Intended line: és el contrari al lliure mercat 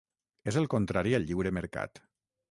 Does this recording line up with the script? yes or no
yes